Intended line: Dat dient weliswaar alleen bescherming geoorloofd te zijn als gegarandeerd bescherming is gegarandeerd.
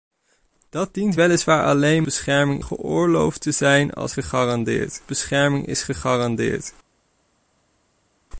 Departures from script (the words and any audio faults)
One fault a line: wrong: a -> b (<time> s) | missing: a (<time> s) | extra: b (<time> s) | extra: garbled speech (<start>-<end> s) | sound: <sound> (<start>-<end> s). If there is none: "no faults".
no faults